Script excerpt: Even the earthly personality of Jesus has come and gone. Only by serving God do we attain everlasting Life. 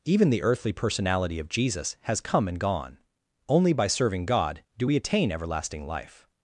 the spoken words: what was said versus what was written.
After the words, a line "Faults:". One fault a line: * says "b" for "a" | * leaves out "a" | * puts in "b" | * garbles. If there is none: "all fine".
Even the earthly personality of Jesus has come and gone. Only by serving God do we attain everlasting Life.
Faults:
all fine